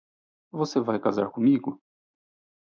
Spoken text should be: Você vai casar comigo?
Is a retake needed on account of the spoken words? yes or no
no